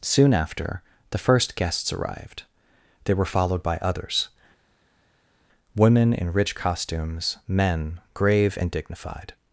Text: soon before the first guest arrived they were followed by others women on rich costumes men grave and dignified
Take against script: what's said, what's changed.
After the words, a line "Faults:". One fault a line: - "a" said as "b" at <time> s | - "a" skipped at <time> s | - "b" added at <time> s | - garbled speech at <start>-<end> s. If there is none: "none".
soon after the first guests arrived they were followed by others women in rich costumes men grave and dignified
Faults:
- "before" said as "after" at 0.3 s
- "guest" said as "guests" at 1.6 s
- "on" said as "in" at 6.1 s